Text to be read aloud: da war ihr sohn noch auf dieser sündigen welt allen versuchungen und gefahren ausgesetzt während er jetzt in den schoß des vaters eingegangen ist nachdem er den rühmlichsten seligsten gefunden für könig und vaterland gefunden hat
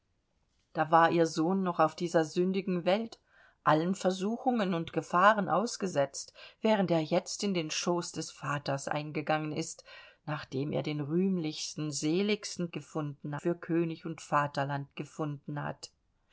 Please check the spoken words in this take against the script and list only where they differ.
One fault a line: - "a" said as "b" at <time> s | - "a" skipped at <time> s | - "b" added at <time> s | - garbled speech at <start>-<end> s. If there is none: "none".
none